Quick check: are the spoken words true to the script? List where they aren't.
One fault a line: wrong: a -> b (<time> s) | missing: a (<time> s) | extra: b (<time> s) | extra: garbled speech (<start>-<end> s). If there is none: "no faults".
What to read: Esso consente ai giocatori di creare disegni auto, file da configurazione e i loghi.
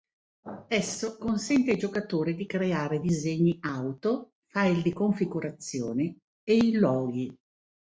wrong: da -> di (4.8 s)